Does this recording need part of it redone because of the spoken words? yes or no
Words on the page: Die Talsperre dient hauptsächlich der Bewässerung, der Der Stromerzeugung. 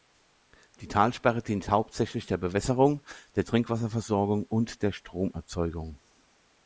yes